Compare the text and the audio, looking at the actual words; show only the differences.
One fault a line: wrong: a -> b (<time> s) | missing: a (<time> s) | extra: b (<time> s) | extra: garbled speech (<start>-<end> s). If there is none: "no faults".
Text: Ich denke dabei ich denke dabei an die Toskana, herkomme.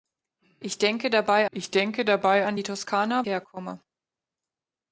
no faults